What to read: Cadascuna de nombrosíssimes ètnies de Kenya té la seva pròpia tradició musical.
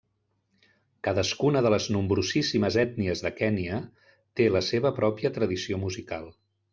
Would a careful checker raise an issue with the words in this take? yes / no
yes